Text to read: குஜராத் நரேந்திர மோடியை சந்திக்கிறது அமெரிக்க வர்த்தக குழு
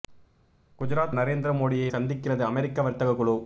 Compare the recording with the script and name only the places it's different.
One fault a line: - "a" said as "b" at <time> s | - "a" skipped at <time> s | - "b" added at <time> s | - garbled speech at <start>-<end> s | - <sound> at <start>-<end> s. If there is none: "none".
none